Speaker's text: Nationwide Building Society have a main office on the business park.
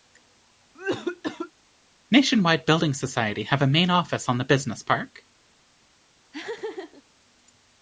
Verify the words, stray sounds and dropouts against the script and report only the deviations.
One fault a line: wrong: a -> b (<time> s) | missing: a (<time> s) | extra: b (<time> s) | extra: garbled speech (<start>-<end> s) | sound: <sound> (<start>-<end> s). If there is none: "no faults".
sound: cough (0.7-1.5 s)
sound: laugh (6.3-7.0 s)